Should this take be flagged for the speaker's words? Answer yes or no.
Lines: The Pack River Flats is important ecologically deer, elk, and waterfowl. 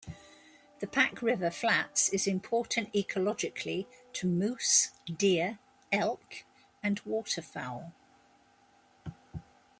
yes